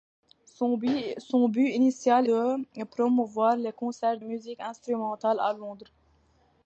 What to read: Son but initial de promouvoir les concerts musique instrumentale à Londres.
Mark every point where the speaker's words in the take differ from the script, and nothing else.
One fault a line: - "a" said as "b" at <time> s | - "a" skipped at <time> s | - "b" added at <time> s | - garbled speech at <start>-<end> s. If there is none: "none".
none